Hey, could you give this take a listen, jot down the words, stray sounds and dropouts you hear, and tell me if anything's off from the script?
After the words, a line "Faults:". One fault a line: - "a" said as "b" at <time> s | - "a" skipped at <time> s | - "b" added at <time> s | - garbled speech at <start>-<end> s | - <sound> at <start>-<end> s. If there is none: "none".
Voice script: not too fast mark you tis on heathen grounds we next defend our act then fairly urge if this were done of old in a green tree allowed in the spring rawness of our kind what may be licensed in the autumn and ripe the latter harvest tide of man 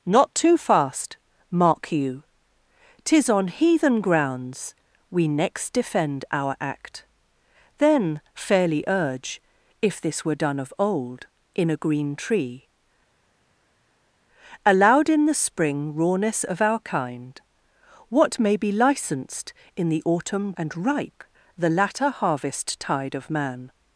not too fast mark you tis on heathen grounds we next defend our act then fairly urge if this were done of old in a green tree allowed in the spring rawness of our kind what may be licensed in the autumn and ripe the latter harvest tide of man
Faults:
none